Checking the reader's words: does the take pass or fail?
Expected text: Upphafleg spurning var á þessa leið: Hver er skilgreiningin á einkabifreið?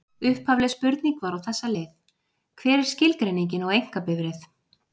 pass